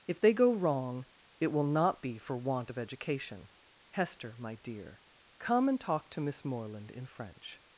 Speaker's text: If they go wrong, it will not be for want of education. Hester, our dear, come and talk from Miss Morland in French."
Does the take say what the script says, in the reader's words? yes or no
no